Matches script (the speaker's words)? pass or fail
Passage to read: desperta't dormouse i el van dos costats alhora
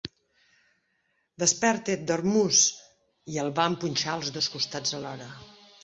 fail